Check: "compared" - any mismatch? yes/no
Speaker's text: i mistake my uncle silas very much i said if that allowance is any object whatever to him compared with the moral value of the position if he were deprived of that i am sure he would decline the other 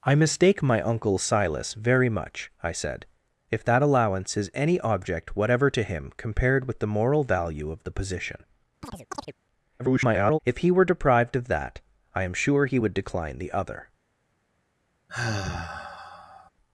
no